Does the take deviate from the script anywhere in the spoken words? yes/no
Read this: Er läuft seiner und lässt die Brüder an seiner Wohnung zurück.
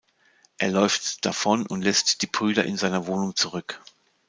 yes